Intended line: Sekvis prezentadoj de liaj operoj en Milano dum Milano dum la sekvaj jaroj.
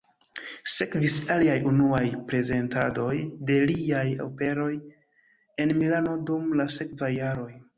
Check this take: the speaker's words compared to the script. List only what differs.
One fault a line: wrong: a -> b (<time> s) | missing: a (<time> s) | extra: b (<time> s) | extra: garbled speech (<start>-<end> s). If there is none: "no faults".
extra: aliaj unuaj (1.3 s)
missing: Milano dum (6.5 s)